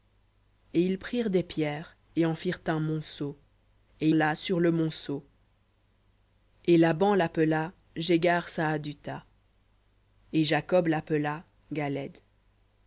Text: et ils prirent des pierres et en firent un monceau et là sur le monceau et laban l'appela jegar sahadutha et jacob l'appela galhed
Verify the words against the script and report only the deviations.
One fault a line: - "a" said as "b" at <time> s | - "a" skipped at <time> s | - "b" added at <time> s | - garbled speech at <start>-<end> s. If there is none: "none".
none